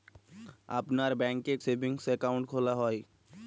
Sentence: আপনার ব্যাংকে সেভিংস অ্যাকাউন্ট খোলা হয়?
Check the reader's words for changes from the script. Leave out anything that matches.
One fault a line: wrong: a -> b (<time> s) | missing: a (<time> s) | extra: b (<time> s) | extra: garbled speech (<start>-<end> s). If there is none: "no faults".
no faults